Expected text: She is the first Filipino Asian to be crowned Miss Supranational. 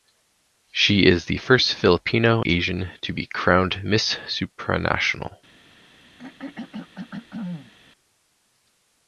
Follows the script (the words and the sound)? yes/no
no